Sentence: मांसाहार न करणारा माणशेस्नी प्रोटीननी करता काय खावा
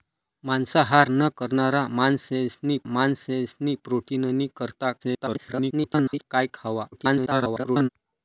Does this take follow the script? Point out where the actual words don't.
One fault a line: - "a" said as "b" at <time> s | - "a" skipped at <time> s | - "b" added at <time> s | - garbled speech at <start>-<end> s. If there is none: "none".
- "माणशेस्नी" added at 2.9 s
- garbled speech at 5.0-6.2 s
- garbled speech at 6.9-7.9 s